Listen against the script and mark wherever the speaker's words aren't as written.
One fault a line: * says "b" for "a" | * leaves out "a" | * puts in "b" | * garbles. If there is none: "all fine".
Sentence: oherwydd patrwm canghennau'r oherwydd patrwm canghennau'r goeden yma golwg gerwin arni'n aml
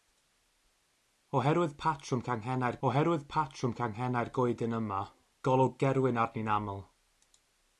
all fine